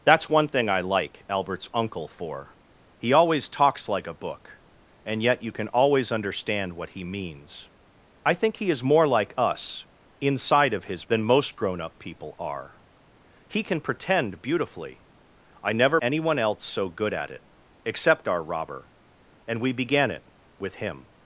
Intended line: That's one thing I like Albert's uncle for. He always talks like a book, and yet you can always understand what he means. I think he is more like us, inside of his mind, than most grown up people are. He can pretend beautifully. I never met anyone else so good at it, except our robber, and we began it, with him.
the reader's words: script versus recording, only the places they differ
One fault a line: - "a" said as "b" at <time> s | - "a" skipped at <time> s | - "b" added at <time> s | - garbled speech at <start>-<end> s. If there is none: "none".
- "mind" skipped at 11.1 s
- "met" skipped at 16.0 s